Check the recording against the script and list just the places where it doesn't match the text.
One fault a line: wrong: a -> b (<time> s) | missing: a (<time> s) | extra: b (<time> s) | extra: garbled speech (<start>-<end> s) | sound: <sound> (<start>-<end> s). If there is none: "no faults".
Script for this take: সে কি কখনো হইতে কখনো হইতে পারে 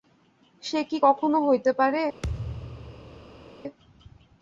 missing: কখনো হইতে (1.7 s)
sound: thud (2.2-3.5 s)